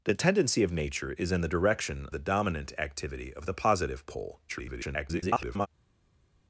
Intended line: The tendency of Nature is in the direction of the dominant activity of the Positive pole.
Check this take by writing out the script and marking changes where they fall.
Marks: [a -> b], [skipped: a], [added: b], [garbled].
The tendency of Nature is in the direction [skipped: of] the dominant activity of the Positive pole. [garbled]